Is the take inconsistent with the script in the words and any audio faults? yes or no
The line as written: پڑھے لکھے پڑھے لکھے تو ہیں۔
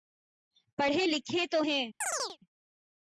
yes